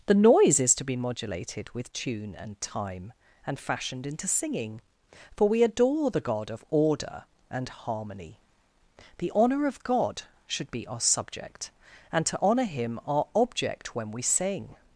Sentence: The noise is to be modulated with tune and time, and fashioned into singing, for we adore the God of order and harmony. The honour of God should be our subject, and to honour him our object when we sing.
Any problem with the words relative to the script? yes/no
no